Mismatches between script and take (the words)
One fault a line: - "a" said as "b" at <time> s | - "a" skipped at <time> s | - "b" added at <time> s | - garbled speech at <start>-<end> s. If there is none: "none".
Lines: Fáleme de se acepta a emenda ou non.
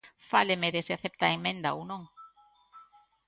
none